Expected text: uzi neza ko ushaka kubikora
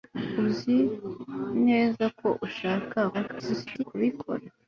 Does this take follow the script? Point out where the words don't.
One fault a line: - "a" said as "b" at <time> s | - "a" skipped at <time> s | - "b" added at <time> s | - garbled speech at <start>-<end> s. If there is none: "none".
- garbled speech at 3.1-3.8 s